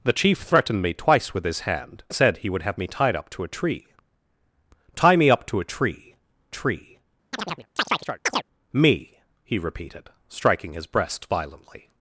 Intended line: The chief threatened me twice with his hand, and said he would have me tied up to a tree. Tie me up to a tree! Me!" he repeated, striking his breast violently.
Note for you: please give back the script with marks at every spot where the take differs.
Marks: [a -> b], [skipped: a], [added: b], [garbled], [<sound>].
The chief threatened me twice with his hand, [skipped: and] said he would have me tied up to a tree. Tie me up to a tree! [added: tree] [chirp] Me!" he repeated, striking his breast violently.